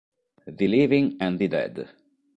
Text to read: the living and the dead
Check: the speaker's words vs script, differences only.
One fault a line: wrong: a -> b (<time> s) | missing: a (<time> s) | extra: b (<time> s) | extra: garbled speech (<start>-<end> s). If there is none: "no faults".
no faults